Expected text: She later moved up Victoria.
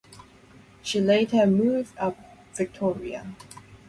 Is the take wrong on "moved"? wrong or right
right